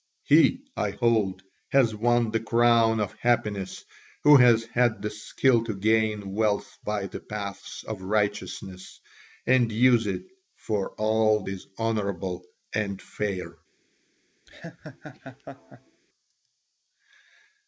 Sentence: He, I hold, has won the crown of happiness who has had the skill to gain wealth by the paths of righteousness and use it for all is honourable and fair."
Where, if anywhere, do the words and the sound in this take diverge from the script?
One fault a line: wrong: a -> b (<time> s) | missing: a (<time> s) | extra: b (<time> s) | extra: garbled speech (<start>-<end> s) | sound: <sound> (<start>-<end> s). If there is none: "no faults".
sound: laugh (14.5-16.0 s)